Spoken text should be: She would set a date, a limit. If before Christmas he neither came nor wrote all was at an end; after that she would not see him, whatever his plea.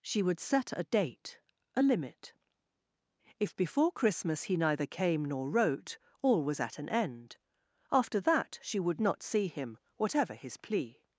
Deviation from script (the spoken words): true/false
false